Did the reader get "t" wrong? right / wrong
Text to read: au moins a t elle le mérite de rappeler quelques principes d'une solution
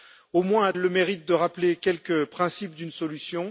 wrong